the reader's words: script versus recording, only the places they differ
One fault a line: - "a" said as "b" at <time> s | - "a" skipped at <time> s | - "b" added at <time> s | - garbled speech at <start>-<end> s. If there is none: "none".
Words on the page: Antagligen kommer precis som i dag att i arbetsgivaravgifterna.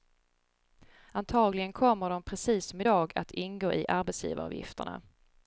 - "de" added at 2.1 s
- "ingå" added at 3.3 s